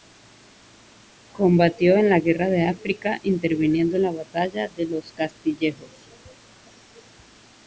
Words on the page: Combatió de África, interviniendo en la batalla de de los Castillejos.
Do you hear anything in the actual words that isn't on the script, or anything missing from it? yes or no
yes